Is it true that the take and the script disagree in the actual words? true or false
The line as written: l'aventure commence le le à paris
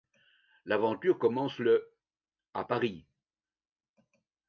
true